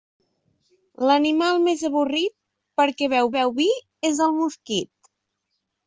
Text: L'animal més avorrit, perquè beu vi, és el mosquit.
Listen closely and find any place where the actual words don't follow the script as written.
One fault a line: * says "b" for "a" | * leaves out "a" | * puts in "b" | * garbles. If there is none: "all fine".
* puts in "beu"